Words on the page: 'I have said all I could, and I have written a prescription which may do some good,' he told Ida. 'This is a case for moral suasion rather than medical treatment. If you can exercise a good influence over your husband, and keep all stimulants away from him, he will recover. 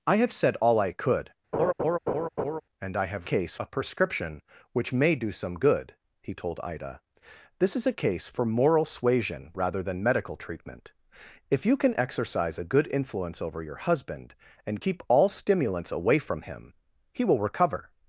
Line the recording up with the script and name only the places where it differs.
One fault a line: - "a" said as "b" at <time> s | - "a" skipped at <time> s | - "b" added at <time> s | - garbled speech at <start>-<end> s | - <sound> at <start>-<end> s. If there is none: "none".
- laugh at 1.5-2.6 s
- "written" said as "case" at 3.3 s